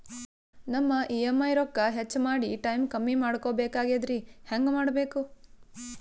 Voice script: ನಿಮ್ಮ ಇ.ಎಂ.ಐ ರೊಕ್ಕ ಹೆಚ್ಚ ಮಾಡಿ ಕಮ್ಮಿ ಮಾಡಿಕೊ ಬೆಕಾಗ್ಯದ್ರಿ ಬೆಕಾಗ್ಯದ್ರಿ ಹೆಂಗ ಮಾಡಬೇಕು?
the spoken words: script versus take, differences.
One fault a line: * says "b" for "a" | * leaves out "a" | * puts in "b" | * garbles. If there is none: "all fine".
* says "ನಮ್ಮ" for "ನಿಮ್ಮ"
* puts in "ಟೈಮ್"
* leaves out "ಬೆಕಾಗ್ಯದ್ರಿ"